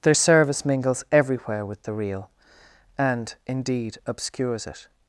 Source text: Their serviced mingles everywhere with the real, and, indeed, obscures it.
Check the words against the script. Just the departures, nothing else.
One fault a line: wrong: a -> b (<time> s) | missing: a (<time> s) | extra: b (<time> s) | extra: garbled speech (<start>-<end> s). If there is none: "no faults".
wrong: serviced -> service (0.1 s)